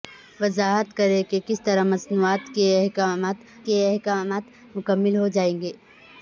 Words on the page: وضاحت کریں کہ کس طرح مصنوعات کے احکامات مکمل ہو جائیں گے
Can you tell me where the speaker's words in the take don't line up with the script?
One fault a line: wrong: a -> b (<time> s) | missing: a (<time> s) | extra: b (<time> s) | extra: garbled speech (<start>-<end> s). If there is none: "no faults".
extra: کے احکامات (3.7 s)